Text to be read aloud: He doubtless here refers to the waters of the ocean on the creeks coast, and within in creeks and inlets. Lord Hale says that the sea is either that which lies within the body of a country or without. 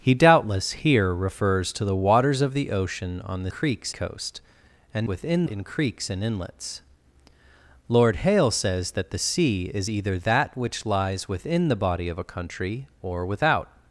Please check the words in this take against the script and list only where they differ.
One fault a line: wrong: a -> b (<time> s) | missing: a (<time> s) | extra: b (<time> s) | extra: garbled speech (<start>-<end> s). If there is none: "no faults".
no faults